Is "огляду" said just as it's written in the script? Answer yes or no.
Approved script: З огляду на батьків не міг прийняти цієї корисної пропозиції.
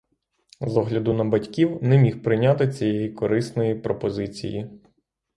yes